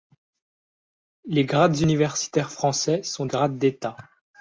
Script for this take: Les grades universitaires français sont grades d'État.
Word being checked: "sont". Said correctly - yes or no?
yes